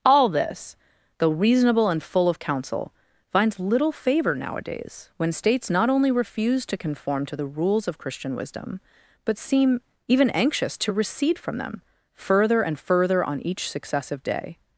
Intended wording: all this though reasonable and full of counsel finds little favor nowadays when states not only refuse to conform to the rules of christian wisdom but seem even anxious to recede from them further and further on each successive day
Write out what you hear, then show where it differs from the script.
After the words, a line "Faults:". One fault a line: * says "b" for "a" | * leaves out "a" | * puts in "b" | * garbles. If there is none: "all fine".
all this though reasonable and full of counsel finds little favor nowadays when states not only refuse to conform to the rules of christian wisdom but seem even anxious to recede from them further and further on each successive day
Faults:
all fine